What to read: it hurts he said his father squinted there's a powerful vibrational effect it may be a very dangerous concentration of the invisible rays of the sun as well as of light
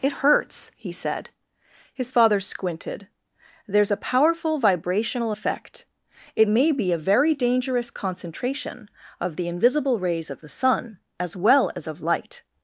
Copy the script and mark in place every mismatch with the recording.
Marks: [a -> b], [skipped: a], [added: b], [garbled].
it hurts he said his father squinted there's a powerful vibrational effect it may be a very dangerous concentration of the invisible rays of the sun as well as of light